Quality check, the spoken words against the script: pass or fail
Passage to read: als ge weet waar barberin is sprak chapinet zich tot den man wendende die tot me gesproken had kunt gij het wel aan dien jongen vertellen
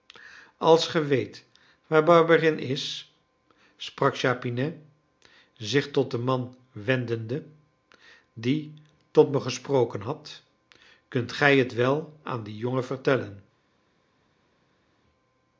pass